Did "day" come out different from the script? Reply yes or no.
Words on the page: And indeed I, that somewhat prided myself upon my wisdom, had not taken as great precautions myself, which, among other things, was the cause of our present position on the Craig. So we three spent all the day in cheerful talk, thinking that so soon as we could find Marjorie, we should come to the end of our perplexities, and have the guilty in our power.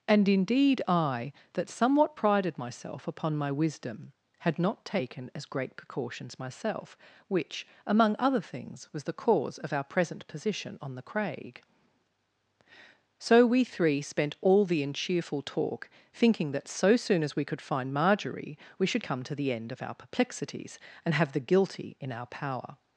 yes